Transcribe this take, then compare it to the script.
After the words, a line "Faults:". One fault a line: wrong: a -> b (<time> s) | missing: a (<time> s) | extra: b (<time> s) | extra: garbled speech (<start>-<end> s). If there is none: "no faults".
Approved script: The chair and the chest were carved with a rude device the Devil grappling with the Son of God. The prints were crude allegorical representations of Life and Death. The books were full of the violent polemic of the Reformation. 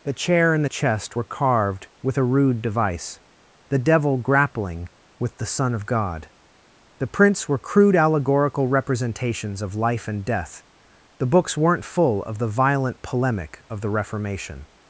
The chair and the chest were carved with a rude device the Devil grappling with the Son of God. The prints were crude allegorical representations of Life and Death. The books weren't full of the violent polemic of the Reformation.
Faults:
wrong: were -> weren't (11.6 s)